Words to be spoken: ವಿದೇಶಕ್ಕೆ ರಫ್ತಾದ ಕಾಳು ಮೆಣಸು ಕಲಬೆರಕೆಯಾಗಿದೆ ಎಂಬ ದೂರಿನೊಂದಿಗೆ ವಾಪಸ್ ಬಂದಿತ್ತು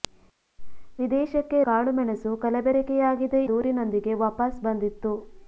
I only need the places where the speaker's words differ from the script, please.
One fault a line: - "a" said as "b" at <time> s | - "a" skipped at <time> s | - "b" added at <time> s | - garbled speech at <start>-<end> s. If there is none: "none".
- "ರಫ್ತಾದ" skipped at 1.6 s
- "ಎಂಬ" skipped at 3.4 s